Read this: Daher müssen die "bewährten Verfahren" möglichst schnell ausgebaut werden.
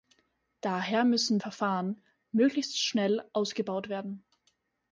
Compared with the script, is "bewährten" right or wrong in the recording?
wrong